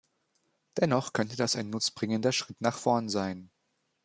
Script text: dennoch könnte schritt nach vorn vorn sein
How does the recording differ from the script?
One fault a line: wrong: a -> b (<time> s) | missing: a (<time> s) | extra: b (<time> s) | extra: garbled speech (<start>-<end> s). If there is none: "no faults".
extra: das ein nutzbringender (1.4 s)
missing: vorn (3.1 s)